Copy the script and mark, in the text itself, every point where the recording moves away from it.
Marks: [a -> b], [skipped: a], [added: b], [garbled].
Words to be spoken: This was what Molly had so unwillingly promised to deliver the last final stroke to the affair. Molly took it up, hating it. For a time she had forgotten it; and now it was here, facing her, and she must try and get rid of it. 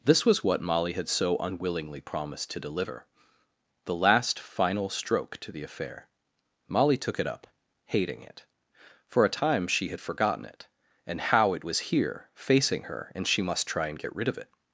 This was what Molly had so unwillingly promised to deliver the last final stroke to the affair. Molly took it up, hating it. For a time she had forgotten it; and [now -> how] it was here, facing her, and she must try and get rid of it.